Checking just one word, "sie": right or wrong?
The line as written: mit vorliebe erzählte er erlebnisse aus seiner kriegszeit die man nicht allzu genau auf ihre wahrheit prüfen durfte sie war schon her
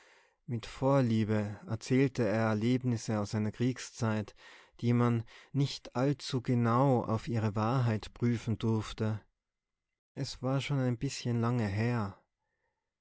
wrong